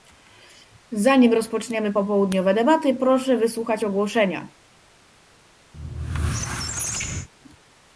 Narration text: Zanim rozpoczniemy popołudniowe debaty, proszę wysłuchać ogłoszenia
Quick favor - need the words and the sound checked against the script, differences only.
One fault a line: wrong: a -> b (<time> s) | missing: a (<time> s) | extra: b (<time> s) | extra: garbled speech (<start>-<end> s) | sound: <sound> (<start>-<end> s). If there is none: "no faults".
sound: squeak (5.7-7.3 s)